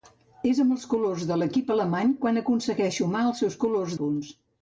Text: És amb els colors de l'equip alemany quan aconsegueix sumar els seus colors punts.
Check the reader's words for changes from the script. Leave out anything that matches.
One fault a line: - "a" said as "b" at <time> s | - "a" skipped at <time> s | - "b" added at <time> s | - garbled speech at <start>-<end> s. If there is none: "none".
none